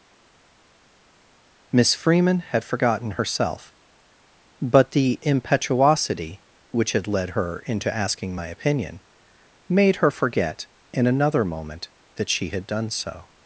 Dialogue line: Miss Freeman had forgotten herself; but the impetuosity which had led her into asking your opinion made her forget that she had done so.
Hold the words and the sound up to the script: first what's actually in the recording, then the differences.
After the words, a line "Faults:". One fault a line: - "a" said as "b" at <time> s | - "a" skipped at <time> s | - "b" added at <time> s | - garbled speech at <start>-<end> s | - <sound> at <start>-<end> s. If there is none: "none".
Miss Freeman had forgotten herself; but the impetuosity which had led her into asking my opinion made her forget in another moment that she had done so.
Faults:
- "your" said as "my" at 8.3 s
- "in another moment" added at 10.9 s